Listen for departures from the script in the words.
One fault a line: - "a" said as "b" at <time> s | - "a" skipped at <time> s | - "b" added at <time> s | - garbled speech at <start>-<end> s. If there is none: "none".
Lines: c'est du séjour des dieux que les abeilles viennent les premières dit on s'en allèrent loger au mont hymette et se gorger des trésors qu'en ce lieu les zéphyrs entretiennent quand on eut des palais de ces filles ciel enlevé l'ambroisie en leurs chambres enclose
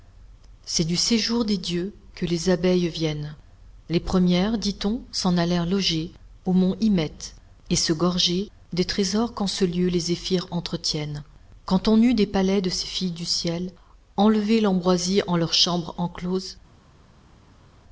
- "du" added at 13.1 s